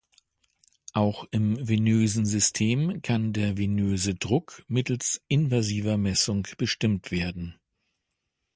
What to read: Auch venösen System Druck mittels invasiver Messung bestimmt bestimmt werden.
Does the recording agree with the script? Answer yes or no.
no